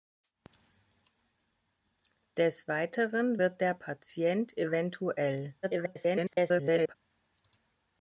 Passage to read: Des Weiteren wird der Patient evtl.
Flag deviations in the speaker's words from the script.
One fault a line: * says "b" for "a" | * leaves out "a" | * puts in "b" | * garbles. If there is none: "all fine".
* garbles